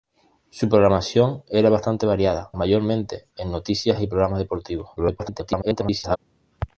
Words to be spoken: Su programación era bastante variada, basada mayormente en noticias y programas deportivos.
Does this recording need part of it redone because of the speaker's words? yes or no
yes